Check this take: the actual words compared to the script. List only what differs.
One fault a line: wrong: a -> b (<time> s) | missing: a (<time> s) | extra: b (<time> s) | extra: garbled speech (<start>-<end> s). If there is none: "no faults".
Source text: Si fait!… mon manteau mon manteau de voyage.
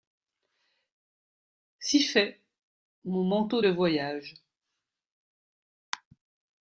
missing: mon manteau (3.6 s)